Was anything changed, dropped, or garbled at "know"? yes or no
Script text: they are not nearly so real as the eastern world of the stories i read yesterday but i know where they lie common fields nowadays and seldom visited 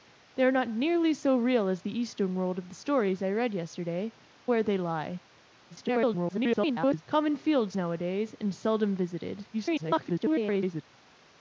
yes